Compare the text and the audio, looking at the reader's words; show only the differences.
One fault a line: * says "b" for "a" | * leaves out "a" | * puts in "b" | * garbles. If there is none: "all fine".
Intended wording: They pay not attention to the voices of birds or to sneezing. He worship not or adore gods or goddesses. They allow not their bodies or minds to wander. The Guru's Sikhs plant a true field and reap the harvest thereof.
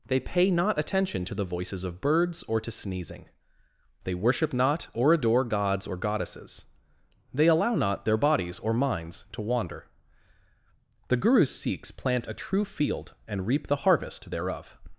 * says "They" for "He"